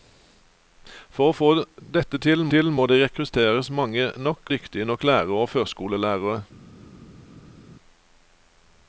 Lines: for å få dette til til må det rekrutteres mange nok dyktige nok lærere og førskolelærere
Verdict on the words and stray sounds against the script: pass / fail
pass